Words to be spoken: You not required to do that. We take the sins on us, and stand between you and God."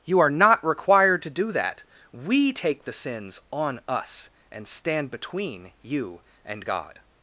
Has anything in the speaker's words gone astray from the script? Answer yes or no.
yes